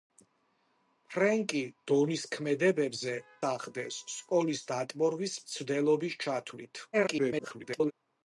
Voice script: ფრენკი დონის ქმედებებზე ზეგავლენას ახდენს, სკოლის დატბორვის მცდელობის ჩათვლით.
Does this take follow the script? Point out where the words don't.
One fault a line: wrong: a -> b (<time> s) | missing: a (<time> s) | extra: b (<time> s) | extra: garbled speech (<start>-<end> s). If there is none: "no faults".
missing: ზეგავლენას (3.1 s)
extra: garbled speech (6.9-7.9 s)